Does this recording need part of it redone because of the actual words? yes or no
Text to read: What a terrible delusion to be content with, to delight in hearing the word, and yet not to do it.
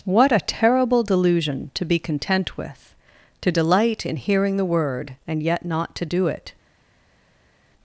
no